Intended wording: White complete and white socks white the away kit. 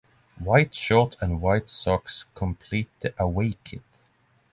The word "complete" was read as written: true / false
false